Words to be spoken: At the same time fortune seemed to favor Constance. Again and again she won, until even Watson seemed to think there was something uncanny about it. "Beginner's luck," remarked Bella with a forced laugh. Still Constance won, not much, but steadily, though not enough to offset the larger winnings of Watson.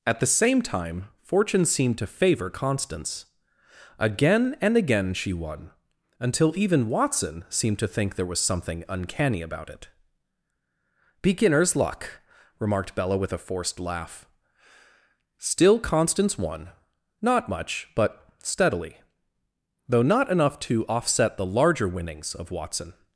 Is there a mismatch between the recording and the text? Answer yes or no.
no